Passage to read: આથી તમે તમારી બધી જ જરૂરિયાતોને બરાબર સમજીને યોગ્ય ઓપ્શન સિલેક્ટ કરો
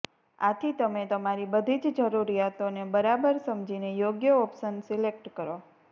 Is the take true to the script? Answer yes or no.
yes